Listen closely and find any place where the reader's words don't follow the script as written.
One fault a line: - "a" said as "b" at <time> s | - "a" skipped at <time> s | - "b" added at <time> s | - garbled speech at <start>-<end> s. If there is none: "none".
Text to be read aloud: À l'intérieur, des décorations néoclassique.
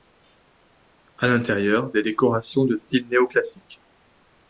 - "de style" added at 2.6 s